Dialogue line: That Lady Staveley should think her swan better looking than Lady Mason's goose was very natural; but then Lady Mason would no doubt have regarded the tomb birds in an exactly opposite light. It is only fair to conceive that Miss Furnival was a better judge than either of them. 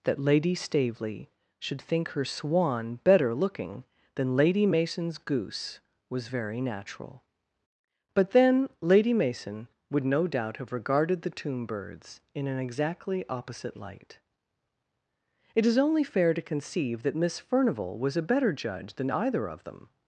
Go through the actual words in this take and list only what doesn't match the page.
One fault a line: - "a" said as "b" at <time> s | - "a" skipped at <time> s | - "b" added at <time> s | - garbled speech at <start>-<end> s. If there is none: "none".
none